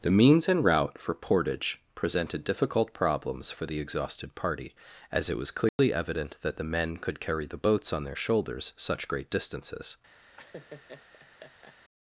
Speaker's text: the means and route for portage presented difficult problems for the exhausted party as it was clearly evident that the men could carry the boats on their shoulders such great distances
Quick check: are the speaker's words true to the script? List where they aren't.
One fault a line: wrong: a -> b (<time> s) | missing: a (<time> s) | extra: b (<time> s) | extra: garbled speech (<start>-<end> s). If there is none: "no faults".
no faults